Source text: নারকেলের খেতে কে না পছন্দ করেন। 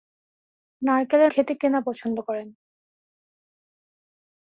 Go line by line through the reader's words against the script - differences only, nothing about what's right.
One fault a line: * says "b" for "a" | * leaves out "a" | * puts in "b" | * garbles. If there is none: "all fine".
all fine